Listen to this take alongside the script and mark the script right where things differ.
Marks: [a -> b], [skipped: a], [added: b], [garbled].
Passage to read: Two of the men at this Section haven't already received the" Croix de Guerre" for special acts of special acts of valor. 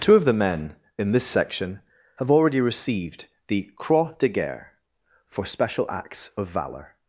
Two of the men [at -> in] this Section [haven't -> have] already received the" Croix de Guerre" for special acts of [skipped: special acts of] valor.